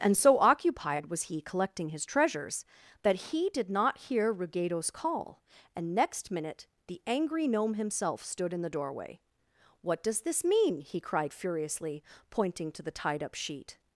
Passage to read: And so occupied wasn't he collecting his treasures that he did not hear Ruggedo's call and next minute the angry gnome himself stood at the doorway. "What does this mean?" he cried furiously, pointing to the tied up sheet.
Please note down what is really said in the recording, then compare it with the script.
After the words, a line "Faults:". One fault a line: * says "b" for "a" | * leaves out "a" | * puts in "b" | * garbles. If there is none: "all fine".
And so occupied was he collecting his treasures that he did not hear Ruggedo's call and next minute the angry gnome himself stood in the doorway. "What does this mean?" he cried furiously, pointing to the tied up sheet.
Faults:
* says "was" for "wasn't"
* says "in" for "at"